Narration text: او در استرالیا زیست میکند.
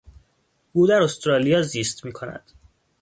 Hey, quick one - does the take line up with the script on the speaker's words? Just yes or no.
yes